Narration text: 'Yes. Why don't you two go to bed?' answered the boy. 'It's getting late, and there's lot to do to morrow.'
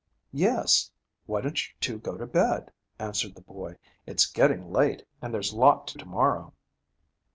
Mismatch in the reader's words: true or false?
true